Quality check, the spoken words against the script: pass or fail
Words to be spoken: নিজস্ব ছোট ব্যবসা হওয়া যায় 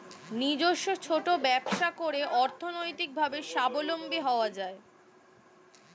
fail